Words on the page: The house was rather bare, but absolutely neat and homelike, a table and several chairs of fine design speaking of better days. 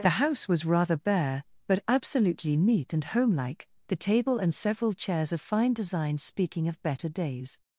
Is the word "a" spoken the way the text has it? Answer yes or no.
no